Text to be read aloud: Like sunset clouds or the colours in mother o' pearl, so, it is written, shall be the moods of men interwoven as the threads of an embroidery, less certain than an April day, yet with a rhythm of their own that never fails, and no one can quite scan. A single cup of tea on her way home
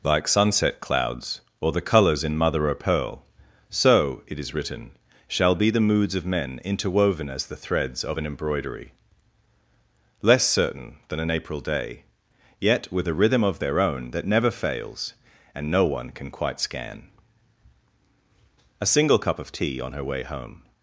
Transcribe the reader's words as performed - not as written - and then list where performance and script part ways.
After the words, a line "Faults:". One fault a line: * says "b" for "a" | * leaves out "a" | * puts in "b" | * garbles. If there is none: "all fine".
Like sunset clouds or the colours in mother o' pearl, so, it is written, shall be the moods of men interwoven as the threads of an embroidery, less certain than an April day, yet with a rhythm of their own that never fails, and no one can quite scan. A single cup of tea on her way home
Faults:
all fine